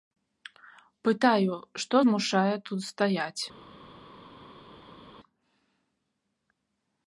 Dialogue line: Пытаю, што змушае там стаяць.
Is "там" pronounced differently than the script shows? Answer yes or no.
yes